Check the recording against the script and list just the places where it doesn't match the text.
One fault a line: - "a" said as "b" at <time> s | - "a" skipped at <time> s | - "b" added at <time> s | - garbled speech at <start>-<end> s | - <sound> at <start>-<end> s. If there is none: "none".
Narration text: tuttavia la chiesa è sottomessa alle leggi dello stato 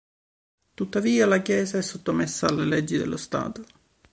none